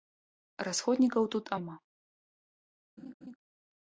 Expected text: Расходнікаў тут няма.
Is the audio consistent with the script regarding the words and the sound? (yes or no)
no